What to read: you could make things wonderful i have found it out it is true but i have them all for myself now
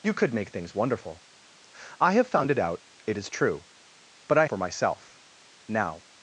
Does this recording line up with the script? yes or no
no